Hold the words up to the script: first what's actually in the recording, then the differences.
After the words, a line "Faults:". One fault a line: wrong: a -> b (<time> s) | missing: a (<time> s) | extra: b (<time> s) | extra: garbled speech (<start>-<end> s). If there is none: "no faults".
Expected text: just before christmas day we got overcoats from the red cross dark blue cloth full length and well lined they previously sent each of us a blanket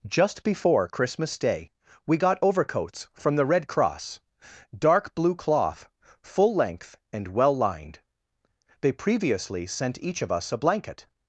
just before christmas day we got overcoats from the red cross dark blue cloth full length and well lined they previously sent each of us a blanket
Faults:
no faults